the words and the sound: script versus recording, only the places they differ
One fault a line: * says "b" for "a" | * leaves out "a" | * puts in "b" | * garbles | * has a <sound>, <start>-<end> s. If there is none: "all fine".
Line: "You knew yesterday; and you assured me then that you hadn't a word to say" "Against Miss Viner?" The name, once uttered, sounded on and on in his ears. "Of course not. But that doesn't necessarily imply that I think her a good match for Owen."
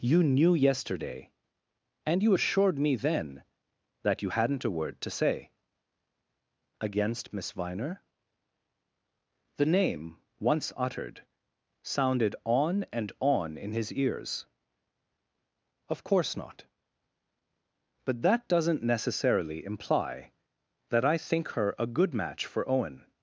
all fine